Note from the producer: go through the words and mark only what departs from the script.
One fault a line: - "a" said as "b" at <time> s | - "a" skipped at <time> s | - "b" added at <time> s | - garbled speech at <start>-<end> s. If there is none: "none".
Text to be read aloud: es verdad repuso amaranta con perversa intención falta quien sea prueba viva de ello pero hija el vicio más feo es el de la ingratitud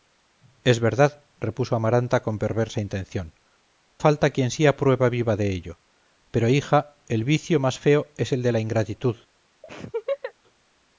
none